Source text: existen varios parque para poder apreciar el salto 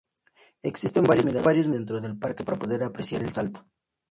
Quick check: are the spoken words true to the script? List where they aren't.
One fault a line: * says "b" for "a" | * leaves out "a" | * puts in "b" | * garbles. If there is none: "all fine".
* puts in "miradores dentro del"